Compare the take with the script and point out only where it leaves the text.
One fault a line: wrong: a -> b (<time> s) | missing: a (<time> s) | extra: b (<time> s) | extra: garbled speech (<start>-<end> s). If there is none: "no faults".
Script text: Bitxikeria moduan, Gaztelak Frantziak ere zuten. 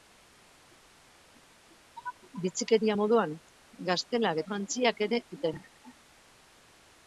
no faults